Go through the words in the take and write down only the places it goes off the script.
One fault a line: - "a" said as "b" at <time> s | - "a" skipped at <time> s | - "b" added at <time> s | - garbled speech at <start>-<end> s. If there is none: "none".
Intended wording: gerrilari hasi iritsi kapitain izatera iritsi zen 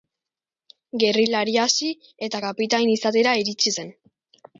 - "iritsi" said as "eta" at 2.3 s